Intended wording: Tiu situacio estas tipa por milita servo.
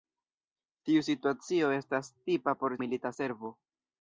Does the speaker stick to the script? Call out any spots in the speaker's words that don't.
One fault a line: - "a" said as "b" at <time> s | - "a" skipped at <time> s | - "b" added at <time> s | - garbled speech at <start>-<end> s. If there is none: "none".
none